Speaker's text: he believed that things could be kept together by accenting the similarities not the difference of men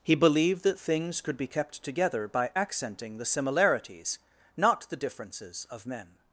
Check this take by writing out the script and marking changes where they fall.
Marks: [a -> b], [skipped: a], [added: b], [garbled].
he believed that things could be kept together by accenting the similarities not the [difference -> differences] of men